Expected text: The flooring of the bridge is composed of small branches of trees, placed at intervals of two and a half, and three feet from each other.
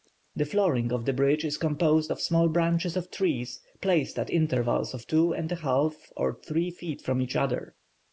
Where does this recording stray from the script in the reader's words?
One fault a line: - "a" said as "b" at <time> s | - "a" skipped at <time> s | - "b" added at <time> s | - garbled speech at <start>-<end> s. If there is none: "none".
- "and" said as "or" at 6.2 s